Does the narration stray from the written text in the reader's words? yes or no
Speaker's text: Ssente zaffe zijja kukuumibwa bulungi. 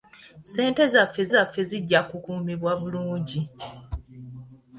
yes